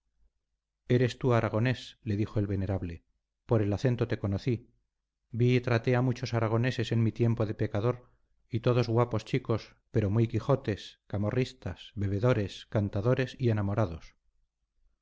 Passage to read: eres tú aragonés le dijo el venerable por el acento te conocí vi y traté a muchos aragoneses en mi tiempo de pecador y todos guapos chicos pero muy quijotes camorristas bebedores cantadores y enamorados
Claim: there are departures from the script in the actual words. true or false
false